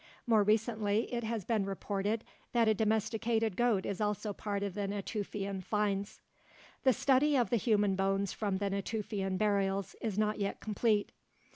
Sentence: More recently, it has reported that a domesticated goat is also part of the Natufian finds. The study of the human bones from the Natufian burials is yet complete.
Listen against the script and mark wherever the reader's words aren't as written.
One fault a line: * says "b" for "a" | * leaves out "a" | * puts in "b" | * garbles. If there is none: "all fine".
* puts in "been"
* puts in "not"